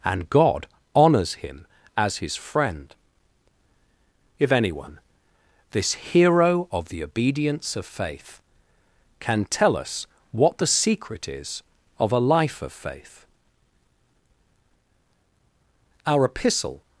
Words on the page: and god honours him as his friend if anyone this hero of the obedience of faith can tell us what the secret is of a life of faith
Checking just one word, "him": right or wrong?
right